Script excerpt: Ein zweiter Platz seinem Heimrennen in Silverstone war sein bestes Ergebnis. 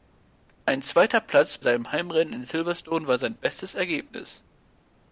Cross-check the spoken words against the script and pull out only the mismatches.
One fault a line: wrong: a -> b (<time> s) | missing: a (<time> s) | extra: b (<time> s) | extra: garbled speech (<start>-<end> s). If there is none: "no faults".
no faults